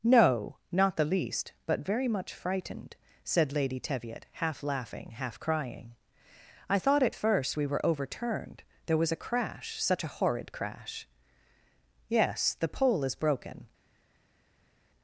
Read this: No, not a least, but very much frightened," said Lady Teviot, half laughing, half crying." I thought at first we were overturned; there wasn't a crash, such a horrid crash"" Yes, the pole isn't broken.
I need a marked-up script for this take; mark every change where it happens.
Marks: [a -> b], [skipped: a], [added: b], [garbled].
No, not [a -> the] least, but very much frightened," said Lady Teviot, half laughing, half crying." I thought at first we were overturned; there [wasn't -> was] a crash, such a horrid crash"" Yes, the pole [isn't -> is] broken.